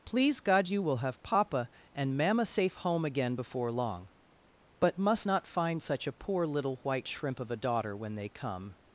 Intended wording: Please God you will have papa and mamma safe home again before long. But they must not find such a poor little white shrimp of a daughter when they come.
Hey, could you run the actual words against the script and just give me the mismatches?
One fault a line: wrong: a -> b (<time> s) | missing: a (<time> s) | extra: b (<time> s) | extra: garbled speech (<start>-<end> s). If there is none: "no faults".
missing: they (5.0 s)